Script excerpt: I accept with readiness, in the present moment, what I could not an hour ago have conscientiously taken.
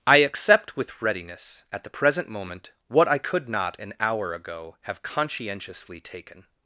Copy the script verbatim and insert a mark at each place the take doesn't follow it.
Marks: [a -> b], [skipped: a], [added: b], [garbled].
I accept with readiness, [in -> at] the present moment, what I could not an hour ago have conscientiously taken.